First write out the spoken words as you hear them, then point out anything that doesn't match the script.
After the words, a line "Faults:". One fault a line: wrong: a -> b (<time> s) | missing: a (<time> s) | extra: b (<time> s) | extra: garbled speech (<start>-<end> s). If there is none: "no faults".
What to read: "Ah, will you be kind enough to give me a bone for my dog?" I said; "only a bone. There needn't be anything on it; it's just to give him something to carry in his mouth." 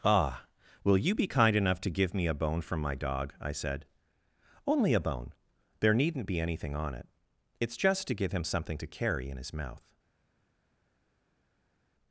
"Ah, will you be kind enough to give me a bone from my dog?" I said; "only a bone. There needn't be anything on it; it's just to give him something to carry in his mouth."
Faults:
wrong: for -> from (2.6 s)